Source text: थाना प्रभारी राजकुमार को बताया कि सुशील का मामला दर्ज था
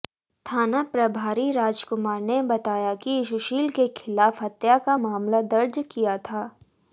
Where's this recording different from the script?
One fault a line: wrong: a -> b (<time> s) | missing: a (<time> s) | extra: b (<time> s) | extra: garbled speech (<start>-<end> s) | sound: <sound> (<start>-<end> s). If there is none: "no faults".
wrong: को -> ने (2.2 s)
extra: के खिलाफ हत्या (3.7 s)
extra: किया (5.9 s)